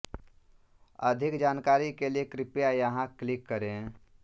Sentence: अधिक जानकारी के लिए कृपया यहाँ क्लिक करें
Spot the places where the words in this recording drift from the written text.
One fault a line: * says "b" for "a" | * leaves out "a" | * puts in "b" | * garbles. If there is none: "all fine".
all fine